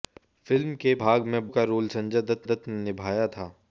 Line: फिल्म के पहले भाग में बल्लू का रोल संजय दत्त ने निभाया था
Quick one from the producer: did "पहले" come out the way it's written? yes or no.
no